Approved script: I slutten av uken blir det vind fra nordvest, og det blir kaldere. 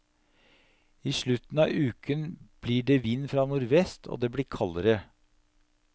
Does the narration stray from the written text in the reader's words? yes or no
no